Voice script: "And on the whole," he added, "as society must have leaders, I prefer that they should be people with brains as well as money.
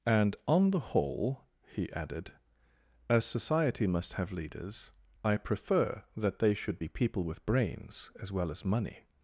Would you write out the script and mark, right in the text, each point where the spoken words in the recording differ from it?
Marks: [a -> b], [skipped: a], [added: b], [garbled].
"And on the whole," he added, "as society must have leaders, I prefer that they should be people with brains as well as money.